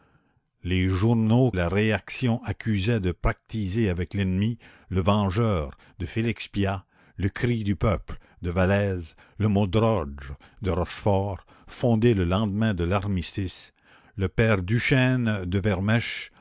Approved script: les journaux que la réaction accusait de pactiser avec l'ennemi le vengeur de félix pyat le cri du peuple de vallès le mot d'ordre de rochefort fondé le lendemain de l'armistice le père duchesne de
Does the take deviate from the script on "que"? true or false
true